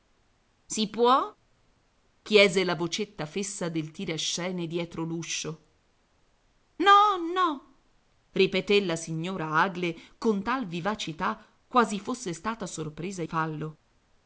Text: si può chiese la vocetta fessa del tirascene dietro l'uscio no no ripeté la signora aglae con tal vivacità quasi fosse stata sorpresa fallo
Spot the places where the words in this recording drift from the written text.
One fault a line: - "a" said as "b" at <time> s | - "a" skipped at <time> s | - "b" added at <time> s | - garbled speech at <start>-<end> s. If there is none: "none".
none